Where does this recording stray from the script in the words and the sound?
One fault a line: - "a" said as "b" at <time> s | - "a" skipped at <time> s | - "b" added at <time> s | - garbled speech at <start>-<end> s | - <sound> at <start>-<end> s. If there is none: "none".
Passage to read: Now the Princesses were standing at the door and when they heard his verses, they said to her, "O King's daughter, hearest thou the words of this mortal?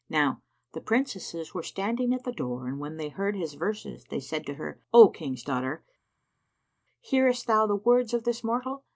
none